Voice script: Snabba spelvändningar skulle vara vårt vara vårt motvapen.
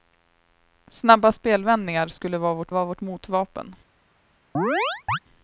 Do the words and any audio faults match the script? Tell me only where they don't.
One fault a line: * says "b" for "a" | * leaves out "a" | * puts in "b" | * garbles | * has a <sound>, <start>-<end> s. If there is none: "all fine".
* has a chirp, 4.5-5.2 s